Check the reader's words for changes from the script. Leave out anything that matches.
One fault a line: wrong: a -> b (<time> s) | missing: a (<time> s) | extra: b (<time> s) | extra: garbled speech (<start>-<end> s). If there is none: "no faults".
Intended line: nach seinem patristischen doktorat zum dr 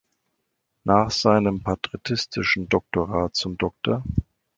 no faults